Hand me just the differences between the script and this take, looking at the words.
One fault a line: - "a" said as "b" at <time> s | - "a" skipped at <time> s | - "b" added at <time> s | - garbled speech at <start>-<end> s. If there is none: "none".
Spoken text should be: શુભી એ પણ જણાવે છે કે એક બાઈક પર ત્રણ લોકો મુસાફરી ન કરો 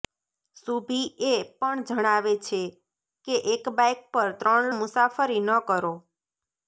- "લોકો" skipped at 4.7 s